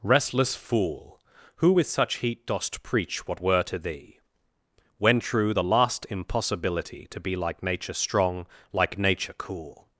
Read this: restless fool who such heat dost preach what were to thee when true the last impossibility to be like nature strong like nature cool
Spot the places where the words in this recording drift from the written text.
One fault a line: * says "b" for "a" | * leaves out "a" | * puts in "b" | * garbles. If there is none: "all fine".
* puts in "with"